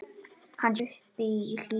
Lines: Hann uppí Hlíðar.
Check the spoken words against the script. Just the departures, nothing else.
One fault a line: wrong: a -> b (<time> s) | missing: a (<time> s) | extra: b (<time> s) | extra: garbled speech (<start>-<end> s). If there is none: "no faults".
no faults